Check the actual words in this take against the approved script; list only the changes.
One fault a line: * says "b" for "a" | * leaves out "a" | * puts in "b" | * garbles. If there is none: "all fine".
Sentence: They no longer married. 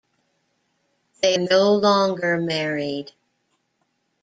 all fine